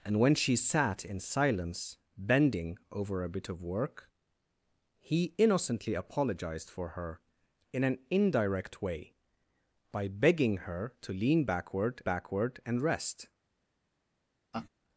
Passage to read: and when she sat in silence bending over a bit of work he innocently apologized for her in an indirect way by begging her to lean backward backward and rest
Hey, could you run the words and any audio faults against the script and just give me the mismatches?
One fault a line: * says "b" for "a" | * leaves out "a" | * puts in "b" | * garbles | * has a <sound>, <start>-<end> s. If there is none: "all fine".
* has a laugh, 14.5-14.7 s